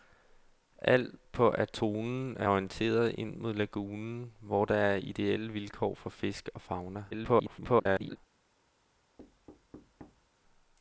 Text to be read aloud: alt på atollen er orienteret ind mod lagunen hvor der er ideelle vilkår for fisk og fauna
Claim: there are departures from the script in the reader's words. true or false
true